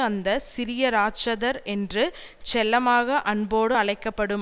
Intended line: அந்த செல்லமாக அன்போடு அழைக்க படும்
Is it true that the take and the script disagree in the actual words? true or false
true